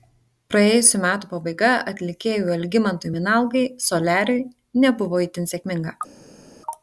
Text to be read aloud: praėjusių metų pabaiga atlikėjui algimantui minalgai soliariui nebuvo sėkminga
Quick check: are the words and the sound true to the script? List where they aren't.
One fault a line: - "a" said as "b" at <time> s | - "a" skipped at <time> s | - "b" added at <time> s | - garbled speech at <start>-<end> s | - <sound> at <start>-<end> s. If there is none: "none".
- "itin" added at 5.3 s